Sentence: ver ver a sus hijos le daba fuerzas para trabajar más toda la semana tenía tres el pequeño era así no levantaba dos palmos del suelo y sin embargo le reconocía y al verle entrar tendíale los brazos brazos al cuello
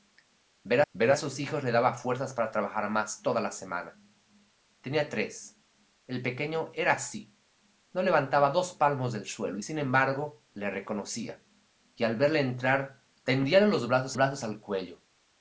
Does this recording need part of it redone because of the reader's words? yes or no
no